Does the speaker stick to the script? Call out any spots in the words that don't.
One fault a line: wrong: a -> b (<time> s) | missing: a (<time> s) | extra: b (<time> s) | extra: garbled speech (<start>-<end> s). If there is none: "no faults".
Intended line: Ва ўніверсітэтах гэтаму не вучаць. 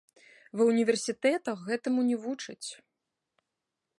no faults